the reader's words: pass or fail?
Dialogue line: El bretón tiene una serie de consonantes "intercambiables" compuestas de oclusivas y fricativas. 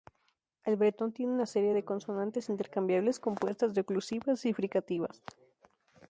pass